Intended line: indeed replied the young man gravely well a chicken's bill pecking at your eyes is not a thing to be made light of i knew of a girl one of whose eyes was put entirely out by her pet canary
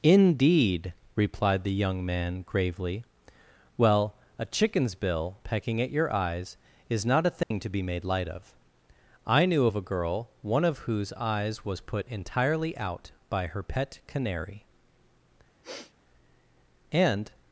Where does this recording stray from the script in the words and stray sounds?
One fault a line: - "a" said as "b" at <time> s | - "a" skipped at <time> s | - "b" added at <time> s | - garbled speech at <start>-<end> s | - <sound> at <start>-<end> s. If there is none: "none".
- dropout at 7.4-7.5 s
- sniff at 15.6-15.9 s
- "and" added at 16.9 s